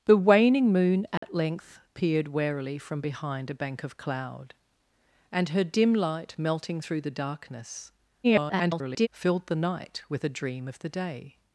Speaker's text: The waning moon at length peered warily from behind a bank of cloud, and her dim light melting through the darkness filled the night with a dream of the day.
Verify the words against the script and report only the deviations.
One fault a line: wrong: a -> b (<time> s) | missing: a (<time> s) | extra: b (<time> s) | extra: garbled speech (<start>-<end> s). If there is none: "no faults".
extra: garbled speech (8.2-9.1 s)